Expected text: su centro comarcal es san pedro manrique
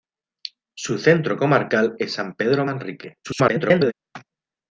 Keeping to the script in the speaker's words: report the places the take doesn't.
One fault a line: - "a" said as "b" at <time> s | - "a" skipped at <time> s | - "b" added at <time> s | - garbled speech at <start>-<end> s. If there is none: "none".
- garbled speech at 3.2-3.9 s